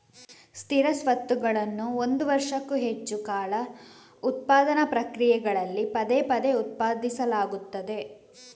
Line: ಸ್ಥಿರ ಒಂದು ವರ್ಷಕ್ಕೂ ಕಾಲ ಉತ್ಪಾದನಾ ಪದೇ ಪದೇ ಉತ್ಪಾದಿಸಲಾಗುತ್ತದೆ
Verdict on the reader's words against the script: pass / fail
fail